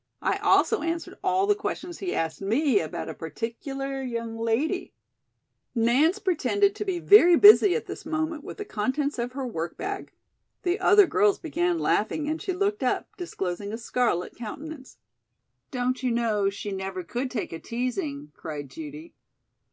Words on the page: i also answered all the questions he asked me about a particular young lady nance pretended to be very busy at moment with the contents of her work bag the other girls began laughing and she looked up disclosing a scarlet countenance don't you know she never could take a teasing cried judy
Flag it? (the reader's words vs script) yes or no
yes